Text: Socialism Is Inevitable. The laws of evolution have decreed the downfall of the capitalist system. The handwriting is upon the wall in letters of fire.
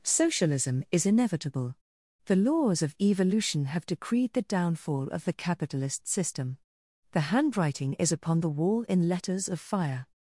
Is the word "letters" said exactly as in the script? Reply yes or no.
yes